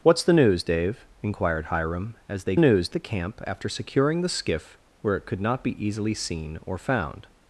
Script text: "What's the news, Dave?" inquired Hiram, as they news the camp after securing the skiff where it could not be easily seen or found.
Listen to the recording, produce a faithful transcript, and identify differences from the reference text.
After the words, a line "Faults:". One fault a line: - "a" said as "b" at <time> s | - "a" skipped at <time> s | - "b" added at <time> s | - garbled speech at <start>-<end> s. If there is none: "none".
"What's the news, Dave?" inquired Hiram, as they news the camp after securing the skiff where it could not be easily seen or found.
Faults:
none